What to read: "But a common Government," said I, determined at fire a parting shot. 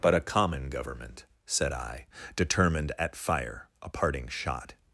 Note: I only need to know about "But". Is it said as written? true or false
true